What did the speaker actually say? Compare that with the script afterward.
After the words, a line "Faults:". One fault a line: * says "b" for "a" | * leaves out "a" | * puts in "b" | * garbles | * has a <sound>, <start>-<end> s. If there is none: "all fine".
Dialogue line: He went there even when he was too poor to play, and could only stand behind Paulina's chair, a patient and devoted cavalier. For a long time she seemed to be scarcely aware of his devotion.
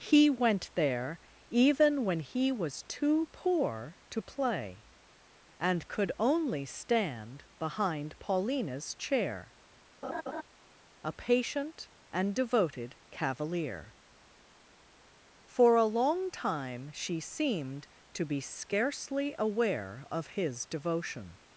He went there even when he was too poor to play, and could only stand behind Paulina's chair, a patient and devoted cavalier. For a long time she seemed to be scarcely aware of his devotion.
Faults:
* has a laugh, 10.0-10.4 s